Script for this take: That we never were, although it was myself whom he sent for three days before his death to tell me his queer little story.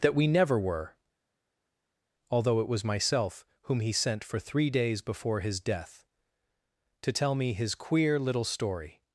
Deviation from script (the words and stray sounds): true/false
false